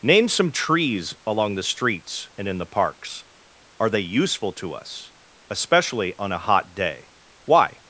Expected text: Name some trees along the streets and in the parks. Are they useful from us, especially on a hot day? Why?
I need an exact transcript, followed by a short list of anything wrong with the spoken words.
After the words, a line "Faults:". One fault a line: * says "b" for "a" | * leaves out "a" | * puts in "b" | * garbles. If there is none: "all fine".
Name some trees along the streets and in the parks. Are they useful to us, especially on a hot day? Why?
Faults:
* says "to" for "from"